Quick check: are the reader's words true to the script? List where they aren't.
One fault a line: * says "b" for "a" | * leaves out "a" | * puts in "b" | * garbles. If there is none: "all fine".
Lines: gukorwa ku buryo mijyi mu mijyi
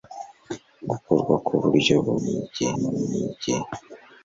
all fine